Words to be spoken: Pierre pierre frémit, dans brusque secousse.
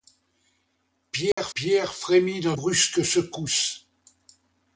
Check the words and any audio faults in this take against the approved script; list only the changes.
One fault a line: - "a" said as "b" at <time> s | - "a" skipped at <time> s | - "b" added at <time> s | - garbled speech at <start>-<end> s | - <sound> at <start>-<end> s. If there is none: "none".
- dropout at 1.3-1.4 s